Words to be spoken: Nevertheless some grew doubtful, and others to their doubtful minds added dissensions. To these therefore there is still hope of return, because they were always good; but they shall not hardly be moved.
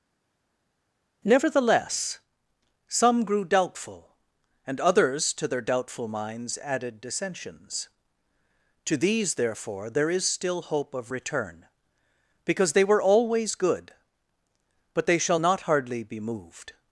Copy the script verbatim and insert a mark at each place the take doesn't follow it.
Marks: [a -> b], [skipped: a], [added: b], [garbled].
Nevertheless some grew doubtful, and others to their doubtful minds added dissensions. To these therefore there is still hope of return, because they were always good; but they shall not hardly be moved.